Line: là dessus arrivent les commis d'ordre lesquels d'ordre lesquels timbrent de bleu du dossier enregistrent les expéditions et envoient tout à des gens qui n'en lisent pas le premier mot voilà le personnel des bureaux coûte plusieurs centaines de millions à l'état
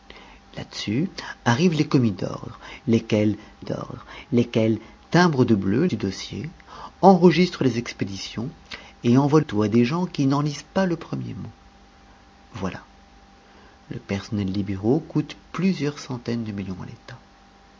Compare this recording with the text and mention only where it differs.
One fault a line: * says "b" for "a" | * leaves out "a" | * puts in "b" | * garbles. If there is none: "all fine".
all fine